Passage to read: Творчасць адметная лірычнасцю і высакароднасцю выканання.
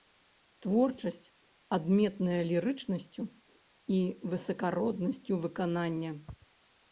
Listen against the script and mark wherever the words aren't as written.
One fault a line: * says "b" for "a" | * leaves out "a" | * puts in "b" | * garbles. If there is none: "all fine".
all fine